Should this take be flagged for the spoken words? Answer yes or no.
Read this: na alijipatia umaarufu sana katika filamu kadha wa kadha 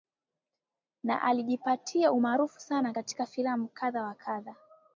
no